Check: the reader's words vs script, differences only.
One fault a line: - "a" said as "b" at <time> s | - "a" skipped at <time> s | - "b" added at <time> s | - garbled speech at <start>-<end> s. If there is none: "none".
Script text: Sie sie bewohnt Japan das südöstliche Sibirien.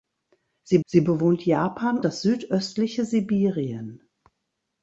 none